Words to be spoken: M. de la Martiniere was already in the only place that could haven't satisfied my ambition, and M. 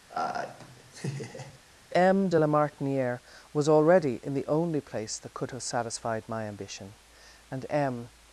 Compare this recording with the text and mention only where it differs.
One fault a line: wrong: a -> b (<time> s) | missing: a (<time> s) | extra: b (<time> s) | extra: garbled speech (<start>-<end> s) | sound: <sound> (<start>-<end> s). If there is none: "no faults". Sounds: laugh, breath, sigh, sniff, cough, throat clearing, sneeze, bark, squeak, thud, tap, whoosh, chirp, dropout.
sound: laugh (0.1-1.6 s)
wrong: haven't -> have (5.5 s)